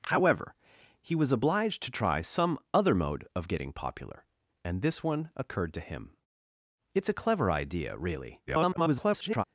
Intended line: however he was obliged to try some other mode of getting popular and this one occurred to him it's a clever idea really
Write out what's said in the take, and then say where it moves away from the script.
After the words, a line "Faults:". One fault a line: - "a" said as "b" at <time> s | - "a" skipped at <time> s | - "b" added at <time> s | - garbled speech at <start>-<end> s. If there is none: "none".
however he was obliged to try some other mode of getting popular and this one occurred to him it's a clever idea really [garbled]
Faults:
- garbled speech at 8.5-9.4 s